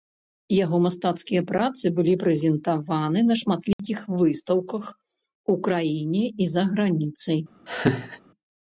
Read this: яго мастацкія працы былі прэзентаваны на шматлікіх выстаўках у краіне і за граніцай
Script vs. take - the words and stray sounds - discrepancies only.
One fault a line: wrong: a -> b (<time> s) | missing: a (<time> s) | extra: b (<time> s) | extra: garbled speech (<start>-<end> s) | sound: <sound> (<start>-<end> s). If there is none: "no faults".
sound: dropout (3.7-3.8 s)
sound: laugh (7.7-8.2 s)